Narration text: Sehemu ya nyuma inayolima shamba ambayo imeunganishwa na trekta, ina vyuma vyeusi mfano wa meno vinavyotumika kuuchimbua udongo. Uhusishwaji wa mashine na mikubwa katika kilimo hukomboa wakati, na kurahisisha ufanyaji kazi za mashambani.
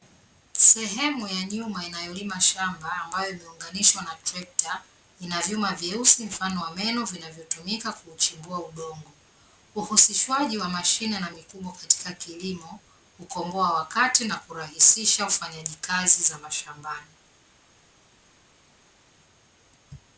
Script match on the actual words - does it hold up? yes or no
yes